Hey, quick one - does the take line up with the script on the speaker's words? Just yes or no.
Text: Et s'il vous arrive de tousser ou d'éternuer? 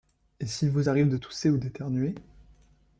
yes